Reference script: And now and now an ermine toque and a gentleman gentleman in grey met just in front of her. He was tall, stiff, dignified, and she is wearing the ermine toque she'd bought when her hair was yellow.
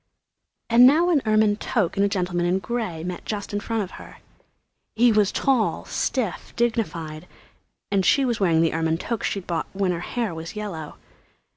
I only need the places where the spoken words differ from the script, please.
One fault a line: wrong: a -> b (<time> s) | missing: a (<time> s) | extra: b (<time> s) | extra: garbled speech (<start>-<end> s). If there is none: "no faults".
missing: and now (1.1 s)
missing: gentleman (2.4 s)
wrong: is -> was (8.2 s)